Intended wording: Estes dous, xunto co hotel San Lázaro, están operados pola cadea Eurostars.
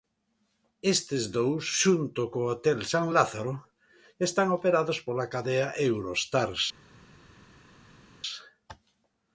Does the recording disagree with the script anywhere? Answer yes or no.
no